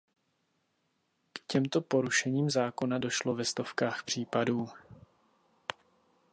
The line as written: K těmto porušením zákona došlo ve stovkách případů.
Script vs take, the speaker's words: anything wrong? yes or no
no